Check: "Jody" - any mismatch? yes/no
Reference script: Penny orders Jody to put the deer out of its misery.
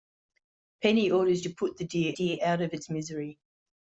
yes